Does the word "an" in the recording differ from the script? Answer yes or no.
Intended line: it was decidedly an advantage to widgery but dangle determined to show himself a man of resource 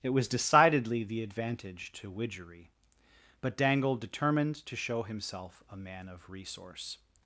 yes